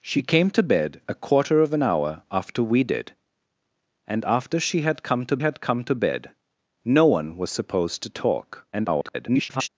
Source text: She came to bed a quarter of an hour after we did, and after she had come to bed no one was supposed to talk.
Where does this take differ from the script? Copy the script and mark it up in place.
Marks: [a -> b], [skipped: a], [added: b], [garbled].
She came to bed a quarter of an hour after we did, and after she had come to [added: had come to] bed no one was supposed to talk. [garbled]